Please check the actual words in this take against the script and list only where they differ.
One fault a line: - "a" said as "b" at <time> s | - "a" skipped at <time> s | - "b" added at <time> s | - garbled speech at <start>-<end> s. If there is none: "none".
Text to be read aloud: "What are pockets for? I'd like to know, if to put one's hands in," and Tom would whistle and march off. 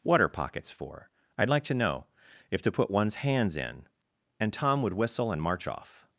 none